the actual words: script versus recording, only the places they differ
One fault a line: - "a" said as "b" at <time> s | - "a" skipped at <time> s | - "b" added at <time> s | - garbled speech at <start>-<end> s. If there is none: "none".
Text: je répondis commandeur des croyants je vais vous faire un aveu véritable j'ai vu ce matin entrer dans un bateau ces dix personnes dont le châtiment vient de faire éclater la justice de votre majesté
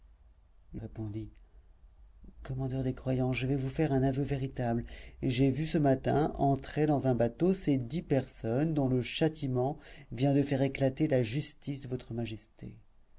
none